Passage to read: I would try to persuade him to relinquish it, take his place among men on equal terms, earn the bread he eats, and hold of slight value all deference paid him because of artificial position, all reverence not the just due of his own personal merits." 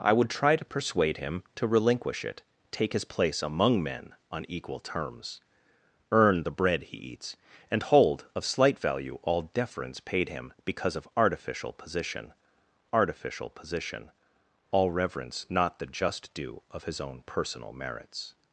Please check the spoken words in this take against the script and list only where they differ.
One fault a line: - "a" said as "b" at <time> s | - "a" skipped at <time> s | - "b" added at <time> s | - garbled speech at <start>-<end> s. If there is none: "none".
- "artificial position" added at 12.9 s